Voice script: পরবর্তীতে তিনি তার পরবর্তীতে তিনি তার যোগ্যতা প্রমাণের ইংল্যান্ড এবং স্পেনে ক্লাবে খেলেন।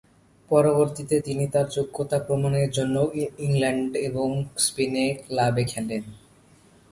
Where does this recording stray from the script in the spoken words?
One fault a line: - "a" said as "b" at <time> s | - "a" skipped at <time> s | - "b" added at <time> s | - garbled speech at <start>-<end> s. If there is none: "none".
- "পরবর্তীতে তিনি তার" skipped at 1.7 s
- "জন্য" added at 2.7 s